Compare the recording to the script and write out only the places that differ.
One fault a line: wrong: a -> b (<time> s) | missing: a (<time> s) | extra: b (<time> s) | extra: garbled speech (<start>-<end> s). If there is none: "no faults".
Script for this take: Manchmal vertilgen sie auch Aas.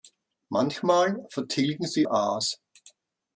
missing: auch (2.1 s)